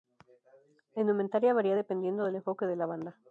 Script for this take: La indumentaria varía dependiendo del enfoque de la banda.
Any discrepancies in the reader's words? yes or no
no